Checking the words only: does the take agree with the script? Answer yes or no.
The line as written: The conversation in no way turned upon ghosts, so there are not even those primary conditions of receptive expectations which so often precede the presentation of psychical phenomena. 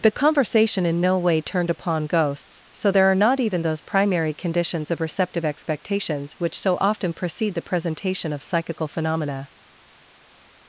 yes